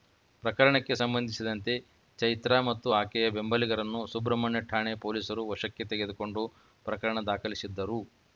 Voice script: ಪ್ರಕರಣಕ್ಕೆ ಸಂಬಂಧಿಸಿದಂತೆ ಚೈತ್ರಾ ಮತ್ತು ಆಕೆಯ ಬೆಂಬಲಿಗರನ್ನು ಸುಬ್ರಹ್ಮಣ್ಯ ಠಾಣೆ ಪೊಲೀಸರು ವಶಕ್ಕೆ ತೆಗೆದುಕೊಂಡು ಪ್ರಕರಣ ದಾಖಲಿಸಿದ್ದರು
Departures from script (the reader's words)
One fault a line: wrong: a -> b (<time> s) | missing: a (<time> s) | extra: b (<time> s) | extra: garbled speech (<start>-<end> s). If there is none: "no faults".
no faults